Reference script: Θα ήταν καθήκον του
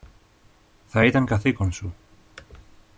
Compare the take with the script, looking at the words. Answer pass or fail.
fail